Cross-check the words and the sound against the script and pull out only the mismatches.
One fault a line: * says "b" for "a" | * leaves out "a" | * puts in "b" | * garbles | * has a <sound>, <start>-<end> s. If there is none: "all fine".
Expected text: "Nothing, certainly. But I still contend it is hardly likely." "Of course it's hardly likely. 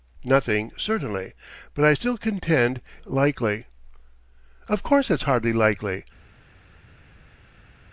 * leaves out "it is hardly"